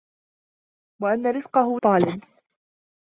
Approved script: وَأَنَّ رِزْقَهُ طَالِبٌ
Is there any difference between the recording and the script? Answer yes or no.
no